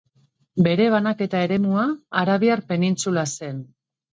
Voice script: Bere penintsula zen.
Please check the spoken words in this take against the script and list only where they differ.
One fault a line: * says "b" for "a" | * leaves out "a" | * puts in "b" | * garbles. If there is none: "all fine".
* puts in "banaketa eremua Arabiar"